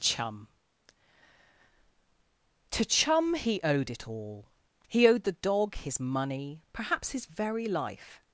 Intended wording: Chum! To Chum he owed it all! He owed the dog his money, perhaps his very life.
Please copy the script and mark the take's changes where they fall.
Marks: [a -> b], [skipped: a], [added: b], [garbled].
Chum! To Chum he owed it all! He owed the dog his money, perhaps his very life.